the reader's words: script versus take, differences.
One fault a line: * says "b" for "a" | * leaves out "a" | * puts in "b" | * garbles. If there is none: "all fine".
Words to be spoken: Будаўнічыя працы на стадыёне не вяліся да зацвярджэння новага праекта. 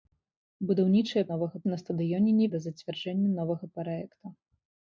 * says "новага" for "працы"
* leaves out "вяліся"